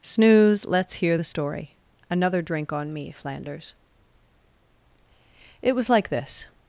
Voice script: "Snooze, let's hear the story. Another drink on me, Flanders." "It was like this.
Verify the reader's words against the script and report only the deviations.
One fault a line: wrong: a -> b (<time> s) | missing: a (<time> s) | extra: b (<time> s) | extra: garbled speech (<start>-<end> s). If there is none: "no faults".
no faults